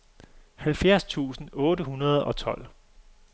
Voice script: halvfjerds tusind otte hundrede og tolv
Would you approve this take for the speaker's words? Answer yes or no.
yes